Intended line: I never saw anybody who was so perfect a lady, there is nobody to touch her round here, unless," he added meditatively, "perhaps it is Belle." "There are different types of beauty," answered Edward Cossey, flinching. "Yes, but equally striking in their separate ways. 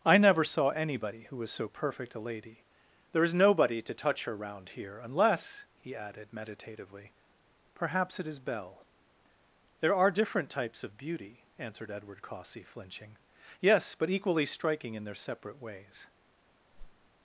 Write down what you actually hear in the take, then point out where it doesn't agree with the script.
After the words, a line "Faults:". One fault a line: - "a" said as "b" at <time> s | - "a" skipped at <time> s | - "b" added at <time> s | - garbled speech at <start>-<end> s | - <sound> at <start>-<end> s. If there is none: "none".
I never saw anybody who was so perfect a lady, there is nobody to touch her round here, unless," he added meditatively, "perhaps it is Belle." "There are different types of beauty," answered Edward Cossey, flinching. "Yes, but equally striking in their separate ways.
Faults:
- whoosh at 16.7-17.1 s